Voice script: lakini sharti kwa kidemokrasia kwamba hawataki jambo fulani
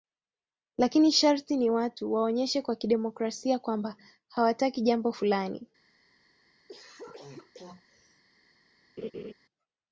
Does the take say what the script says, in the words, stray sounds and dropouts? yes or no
no